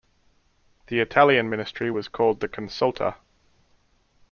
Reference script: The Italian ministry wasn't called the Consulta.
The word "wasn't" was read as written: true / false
false